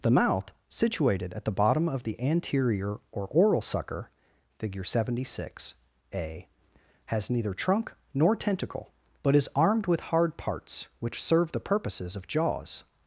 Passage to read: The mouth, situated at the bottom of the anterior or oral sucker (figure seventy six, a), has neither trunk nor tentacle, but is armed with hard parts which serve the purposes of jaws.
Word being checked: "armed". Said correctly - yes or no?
yes